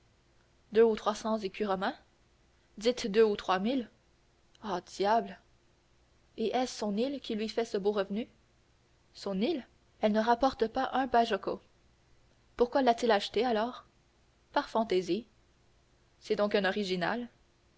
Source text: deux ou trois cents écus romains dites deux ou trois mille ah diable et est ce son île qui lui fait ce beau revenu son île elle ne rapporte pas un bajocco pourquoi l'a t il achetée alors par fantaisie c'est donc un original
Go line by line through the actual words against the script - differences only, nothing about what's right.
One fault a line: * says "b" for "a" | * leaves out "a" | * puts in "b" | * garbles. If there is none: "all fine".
all fine